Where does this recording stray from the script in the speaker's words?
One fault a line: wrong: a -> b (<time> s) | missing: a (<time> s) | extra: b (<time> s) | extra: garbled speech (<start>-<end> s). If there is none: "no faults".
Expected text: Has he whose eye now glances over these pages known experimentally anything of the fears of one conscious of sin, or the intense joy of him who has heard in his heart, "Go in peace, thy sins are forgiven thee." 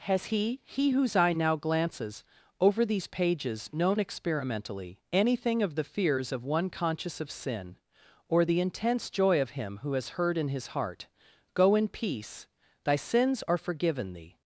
extra: he (0.6 s)